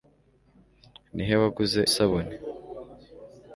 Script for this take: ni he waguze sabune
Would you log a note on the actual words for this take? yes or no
no